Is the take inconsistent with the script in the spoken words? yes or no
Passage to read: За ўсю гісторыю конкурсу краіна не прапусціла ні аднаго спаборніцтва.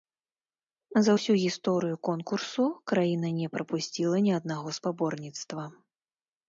no